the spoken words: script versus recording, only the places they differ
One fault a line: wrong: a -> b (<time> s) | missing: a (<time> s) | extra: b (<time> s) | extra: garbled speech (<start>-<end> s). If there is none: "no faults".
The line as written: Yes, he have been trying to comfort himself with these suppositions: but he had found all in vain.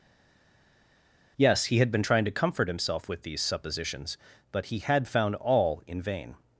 wrong: have -> had (1.8 s)